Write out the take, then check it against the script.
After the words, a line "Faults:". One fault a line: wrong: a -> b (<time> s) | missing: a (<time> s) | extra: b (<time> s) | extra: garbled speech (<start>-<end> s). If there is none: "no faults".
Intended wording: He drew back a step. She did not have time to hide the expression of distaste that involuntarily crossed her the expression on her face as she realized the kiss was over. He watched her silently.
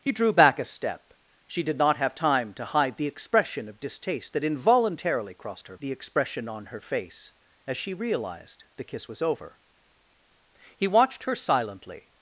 He drew back a step. She did not have time to hide the expression of distaste that involuntarily crossed her the expression on her face as she realized the kiss was over. He watched her silently.
Faults:
no faults